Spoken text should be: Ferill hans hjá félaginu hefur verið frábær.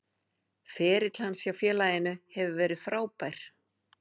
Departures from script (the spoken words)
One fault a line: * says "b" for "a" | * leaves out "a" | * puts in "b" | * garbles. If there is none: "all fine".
all fine